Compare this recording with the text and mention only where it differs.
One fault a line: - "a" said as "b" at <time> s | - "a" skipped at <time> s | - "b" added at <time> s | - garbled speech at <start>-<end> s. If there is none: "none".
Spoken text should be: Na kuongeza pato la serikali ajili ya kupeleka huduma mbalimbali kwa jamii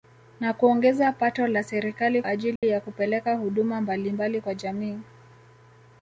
none